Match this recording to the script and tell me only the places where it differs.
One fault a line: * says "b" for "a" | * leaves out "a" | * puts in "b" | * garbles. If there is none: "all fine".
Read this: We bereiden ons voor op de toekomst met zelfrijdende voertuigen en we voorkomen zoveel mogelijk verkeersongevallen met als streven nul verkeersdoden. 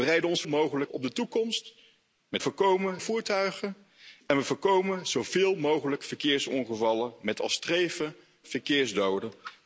* says "mogelijk" for "voor"
* says "voorkomen" for "zelfrijdende"
* leaves out "nul"